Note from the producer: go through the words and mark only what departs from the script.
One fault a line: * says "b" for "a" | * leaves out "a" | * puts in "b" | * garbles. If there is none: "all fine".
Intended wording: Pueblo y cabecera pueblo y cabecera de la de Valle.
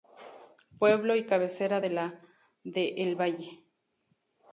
* leaves out "pueblo y cabecera"
* puts in "El"